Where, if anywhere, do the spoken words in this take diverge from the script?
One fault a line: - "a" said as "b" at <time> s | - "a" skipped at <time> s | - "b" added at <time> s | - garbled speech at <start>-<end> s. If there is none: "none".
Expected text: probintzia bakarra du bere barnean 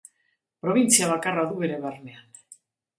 none